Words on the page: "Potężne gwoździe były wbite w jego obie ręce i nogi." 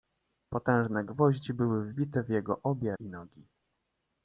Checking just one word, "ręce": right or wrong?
wrong